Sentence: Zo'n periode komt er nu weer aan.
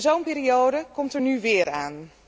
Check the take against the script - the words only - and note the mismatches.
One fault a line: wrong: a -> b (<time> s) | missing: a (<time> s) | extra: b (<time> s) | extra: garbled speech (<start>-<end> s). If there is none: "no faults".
no faults